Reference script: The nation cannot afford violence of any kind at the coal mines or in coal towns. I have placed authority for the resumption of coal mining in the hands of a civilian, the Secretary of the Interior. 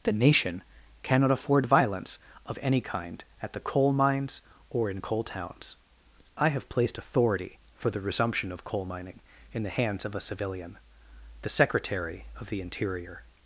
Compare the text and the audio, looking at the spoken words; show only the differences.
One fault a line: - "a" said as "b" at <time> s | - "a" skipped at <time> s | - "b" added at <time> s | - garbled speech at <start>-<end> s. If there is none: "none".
none